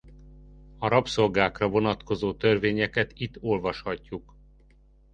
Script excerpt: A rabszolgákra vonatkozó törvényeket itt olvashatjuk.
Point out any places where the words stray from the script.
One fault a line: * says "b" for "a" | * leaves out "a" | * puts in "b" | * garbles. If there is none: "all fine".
all fine